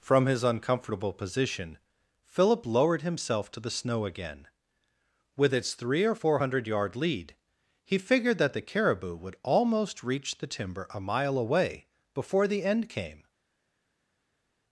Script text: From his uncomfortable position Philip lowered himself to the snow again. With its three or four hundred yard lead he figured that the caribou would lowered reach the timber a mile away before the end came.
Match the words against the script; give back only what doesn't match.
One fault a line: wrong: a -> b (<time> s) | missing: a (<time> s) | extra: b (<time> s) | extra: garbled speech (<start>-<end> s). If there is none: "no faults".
wrong: lowered -> almost (9.4 s)